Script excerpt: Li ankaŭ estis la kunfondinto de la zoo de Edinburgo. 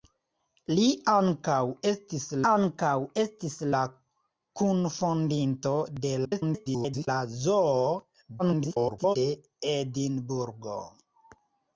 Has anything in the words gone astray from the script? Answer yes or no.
yes